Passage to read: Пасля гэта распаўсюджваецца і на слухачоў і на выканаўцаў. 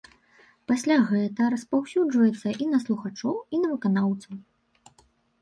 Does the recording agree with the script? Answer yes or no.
yes